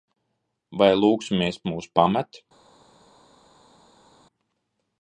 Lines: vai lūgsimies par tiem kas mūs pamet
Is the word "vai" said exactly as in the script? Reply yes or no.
yes